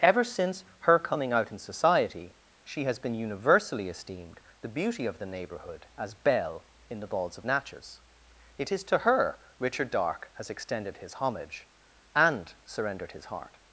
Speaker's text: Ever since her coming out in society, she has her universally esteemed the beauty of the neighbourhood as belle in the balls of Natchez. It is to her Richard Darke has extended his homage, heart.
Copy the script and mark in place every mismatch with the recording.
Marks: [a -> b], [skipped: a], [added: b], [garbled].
Ever since her coming out in society, she has [her -> been] universally esteemed the beauty of the neighbourhood as belle in the balls of Natchez. It is to her Richard Darke has extended his homage, [added: and surrendered his] heart.